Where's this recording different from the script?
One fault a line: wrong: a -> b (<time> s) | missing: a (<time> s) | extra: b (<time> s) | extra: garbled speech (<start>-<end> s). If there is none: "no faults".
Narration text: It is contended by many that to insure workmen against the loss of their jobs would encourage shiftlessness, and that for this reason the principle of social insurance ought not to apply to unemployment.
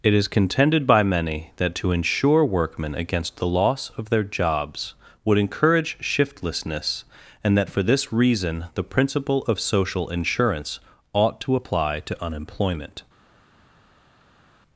missing: not (11.4 s)